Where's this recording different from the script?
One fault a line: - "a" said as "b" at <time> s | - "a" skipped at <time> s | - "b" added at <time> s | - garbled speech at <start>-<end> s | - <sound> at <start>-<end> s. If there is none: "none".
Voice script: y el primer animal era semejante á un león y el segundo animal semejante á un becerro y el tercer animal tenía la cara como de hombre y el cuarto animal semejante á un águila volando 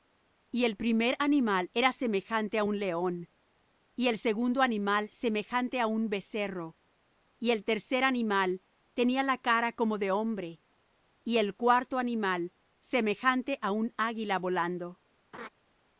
- laugh at 15.3-15.5 s